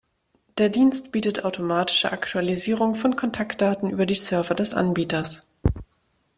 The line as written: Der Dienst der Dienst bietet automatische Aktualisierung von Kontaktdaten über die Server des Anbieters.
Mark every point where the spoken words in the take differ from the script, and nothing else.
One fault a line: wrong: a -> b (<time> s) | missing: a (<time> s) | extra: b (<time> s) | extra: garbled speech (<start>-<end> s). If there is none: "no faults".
missing: der Dienst (1.1 s)